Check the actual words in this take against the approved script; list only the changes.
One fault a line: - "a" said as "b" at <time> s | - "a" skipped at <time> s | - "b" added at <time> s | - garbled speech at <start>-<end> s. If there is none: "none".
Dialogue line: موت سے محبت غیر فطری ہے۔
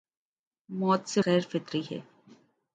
- "محبت" skipped at 1.2 s